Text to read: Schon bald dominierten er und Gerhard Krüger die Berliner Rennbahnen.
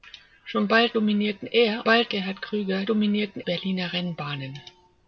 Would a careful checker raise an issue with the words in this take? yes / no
yes